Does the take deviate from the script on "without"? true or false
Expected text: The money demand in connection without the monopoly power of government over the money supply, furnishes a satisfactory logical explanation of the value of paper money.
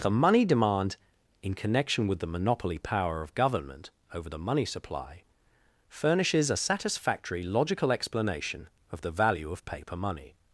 true